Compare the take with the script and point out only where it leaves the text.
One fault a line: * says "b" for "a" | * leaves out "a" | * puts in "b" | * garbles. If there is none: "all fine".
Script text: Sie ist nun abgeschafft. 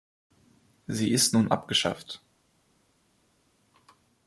all fine